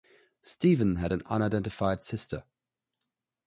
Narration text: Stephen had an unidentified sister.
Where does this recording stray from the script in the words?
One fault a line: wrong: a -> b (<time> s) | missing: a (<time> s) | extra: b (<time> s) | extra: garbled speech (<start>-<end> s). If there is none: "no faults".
no faults